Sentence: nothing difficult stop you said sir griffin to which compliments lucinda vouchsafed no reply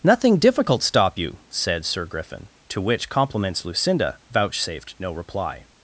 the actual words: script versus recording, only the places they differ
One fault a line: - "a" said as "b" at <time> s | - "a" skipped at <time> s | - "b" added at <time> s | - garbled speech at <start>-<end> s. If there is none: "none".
none